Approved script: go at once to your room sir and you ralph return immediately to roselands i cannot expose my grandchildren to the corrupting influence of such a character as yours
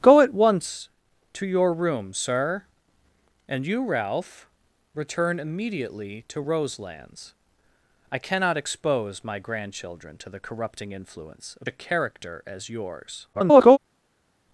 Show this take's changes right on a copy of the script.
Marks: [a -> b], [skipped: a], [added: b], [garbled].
go at once to your room sir and you ralph return immediately to roselands i cannot expose my grandchildren to the corrupting influence of [skipped: such] a character as yours [garbled]